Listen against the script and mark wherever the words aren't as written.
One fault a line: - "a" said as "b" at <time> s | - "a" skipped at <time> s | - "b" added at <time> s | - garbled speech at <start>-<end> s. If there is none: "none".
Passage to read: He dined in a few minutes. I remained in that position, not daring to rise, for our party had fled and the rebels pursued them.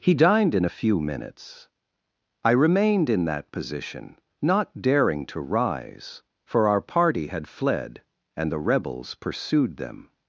none